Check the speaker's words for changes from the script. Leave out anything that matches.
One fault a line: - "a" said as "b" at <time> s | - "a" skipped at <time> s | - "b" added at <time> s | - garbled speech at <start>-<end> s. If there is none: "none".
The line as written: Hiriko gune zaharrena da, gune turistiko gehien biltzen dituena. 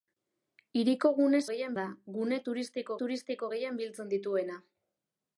- "zaharrena" said as "gehien" at 1.5 s
- "turistiko" added at 3.0 s